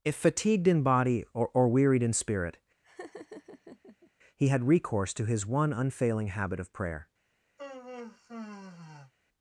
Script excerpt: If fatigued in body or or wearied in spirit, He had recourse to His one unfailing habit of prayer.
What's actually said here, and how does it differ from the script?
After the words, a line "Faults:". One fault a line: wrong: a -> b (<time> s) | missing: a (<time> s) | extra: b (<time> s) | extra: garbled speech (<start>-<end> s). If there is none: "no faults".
If fatigued in body or or wearied in spirit, He had recourse to His one unfailing habit of prayer.
Faults:
no faults